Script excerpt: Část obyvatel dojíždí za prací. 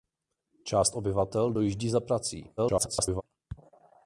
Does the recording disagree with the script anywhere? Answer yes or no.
yes